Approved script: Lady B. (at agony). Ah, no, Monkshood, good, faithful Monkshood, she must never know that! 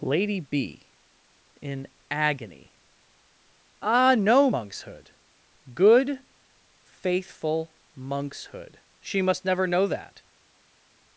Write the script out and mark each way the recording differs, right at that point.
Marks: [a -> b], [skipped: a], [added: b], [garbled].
Lady B. [(at -> in] agony). Ah, no, Monkshood, good, faithful Monkshood, she must never know that!